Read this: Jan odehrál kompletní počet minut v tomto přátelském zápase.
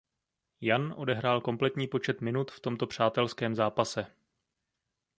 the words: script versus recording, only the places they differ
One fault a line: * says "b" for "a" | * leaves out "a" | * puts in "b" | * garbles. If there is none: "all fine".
all fine